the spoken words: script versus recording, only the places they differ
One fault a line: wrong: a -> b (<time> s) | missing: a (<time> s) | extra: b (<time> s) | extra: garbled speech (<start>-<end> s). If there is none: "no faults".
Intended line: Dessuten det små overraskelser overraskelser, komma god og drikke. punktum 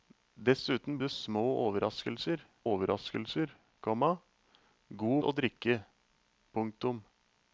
no faults